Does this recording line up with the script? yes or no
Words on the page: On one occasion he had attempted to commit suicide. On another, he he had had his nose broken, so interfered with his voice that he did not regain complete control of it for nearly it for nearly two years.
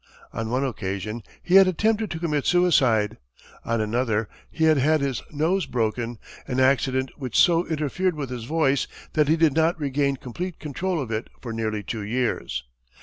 no